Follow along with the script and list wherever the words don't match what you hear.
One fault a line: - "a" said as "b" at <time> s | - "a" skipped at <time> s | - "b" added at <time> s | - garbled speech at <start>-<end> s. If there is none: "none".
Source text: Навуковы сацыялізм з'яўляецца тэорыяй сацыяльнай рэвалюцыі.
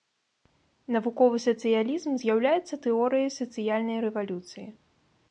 none